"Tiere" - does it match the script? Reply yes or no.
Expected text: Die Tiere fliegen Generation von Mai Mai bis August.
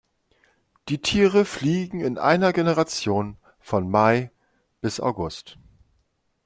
yes